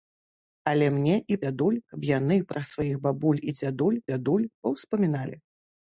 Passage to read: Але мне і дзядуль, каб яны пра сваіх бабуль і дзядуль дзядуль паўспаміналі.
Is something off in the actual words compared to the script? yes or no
no